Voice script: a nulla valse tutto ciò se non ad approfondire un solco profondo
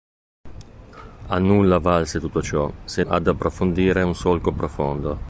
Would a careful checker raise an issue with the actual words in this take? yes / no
yes